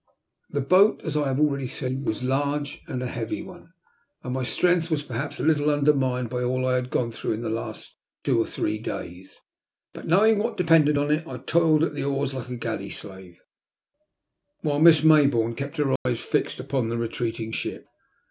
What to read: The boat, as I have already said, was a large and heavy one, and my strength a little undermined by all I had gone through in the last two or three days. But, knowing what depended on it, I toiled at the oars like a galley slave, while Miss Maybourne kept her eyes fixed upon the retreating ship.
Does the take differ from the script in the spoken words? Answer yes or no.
yes